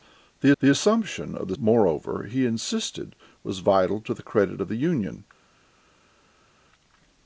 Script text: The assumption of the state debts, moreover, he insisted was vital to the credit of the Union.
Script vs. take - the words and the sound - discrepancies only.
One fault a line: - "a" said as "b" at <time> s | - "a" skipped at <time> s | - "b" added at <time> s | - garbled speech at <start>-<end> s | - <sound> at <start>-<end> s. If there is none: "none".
- "the" added at 0.6 s
- "state debts" skipped at 1.6 s